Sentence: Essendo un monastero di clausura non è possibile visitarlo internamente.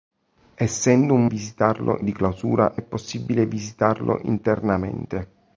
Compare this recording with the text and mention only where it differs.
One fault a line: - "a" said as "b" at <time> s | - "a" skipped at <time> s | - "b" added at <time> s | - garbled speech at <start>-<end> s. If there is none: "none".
- "monastero" said as "visitarlo" at 1.2 s
- "non" skipped at 2.7 s